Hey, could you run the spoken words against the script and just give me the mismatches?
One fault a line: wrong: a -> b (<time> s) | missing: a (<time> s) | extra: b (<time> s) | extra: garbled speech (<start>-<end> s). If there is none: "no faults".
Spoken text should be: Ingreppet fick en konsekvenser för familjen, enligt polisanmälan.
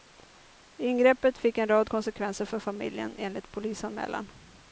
extra: rad (1.7 s)